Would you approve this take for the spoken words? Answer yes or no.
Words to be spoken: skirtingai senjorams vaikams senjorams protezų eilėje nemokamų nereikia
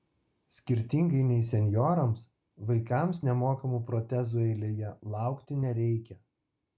no